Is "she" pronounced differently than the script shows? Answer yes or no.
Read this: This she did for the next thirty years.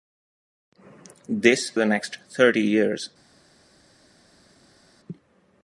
yes